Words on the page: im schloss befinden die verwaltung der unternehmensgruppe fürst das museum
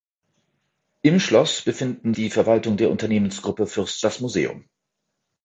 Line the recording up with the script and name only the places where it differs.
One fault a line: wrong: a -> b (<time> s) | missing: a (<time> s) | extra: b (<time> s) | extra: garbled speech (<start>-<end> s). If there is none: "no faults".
no faults